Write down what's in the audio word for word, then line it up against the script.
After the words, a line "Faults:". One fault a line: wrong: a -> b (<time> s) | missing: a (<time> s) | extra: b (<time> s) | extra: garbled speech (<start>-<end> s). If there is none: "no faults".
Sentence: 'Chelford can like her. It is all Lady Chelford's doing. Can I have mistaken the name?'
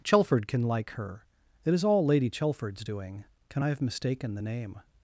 'Chelford can like her. It is all Lady Chelford's doing. Can I have mistaken the name?'
Faults:
no faults